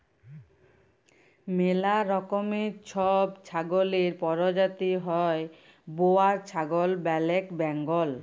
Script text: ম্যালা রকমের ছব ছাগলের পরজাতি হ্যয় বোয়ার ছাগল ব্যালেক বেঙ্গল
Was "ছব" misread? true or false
false